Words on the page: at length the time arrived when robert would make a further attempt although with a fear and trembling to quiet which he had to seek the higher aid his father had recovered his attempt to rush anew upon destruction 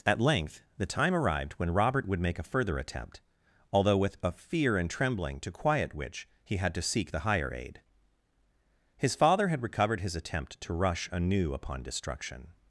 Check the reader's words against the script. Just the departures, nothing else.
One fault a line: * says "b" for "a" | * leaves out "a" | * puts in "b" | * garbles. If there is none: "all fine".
all fine